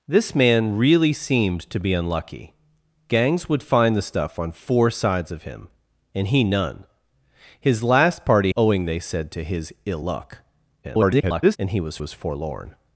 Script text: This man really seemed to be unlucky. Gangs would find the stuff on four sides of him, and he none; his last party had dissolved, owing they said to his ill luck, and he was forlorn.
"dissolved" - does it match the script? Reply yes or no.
no